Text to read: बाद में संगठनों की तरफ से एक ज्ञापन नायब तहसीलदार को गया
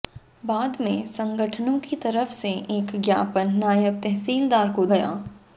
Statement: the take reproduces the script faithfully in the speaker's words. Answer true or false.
true